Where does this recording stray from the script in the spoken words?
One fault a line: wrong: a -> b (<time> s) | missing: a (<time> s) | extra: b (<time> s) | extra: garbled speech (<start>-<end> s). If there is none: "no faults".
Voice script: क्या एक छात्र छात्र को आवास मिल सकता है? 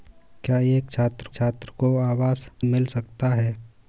no faults